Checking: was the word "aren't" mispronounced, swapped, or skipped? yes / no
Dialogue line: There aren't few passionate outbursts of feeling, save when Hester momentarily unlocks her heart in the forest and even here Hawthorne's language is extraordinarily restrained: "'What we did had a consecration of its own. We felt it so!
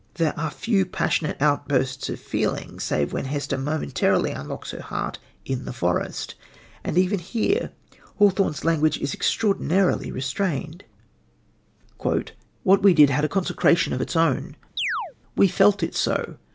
yes